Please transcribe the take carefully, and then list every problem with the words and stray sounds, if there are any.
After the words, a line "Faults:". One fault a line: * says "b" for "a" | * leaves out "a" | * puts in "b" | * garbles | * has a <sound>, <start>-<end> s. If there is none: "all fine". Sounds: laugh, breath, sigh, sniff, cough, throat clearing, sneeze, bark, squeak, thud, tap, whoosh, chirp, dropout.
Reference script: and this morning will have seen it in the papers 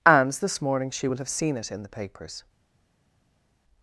and this morning she will have seen it in the papers
Faults:
* puts in "she"